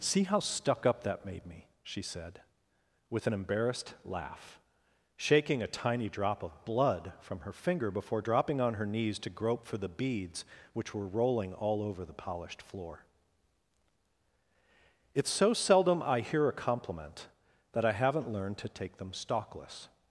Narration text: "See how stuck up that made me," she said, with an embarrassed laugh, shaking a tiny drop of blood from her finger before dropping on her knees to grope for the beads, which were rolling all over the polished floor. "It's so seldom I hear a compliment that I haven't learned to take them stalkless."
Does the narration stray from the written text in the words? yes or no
no